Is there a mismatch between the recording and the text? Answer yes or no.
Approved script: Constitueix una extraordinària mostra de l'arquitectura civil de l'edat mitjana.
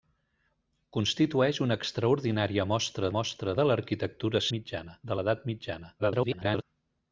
yes